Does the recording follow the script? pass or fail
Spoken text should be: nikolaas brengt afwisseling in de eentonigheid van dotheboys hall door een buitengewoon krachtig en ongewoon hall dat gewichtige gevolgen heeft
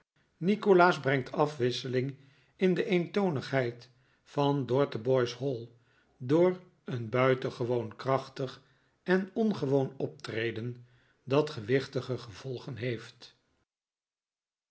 fail